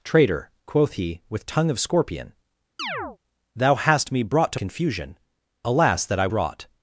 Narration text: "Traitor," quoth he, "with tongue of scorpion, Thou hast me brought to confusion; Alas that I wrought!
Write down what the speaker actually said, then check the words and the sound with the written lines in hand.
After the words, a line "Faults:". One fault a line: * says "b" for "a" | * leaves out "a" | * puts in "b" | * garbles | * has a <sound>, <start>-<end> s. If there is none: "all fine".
"Traitor," quoth he, "with tongue of scorpion, Thou hast me brought to confusion; Alas that I wrought!
Faults:
* has a chirp, 2.8-3.2 s